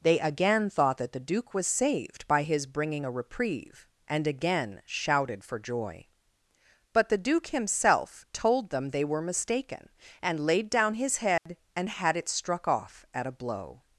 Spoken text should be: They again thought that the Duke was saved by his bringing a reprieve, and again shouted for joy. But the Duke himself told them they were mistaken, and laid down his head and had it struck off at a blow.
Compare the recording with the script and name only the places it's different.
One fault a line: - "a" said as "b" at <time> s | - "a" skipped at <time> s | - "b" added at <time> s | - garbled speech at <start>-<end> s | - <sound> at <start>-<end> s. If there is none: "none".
- dropout at 11.4-11.5 s